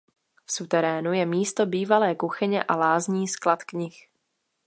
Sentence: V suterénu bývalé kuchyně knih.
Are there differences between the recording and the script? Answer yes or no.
yes